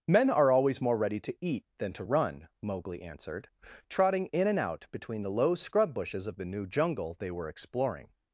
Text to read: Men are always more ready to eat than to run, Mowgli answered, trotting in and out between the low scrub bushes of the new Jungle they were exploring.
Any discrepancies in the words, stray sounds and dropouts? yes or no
no